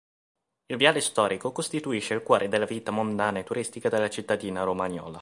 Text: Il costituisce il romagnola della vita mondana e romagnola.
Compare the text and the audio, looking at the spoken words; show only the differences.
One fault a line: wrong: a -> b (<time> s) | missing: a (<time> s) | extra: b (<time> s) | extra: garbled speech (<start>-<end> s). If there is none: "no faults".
extra: viale storico (0.8 s)
wrong: romagnola -> cuore (2.2 s)
extra: turistica della cittadina (3.4 s)